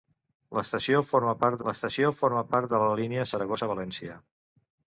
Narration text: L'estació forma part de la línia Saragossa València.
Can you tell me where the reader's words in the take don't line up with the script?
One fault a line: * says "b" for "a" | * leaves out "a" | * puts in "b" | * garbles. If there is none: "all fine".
* puts in "l'estació forma part"